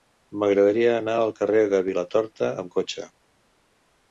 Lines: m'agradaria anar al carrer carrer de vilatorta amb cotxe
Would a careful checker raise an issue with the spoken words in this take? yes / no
yes